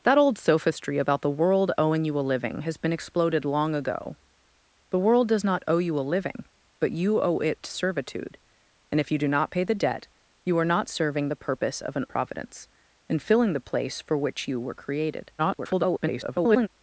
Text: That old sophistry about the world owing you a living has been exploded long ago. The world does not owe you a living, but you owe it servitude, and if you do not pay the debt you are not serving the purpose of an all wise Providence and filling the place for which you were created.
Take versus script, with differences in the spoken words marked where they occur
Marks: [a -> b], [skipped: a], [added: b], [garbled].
That old sophistry about the world owing you a living has been exploded long ago. The world does not owe you a living, but you owe it servitude, and if you do not pay the debt you are not serving the purpose of an [skipped: all wise] Providence and filling the place for which you were created. [garbled]